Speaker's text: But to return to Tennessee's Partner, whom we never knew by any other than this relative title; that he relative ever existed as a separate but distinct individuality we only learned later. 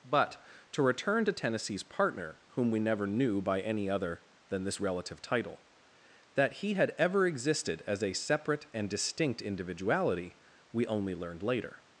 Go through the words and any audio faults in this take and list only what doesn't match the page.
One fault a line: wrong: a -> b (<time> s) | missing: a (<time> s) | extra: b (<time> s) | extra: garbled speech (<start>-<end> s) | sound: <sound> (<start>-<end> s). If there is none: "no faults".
wrong: relative -> had (6.7 s)
wrong: but -> and (8.7 s)